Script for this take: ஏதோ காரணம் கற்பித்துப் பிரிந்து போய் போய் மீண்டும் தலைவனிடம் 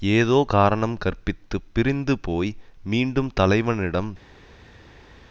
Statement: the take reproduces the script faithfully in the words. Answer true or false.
false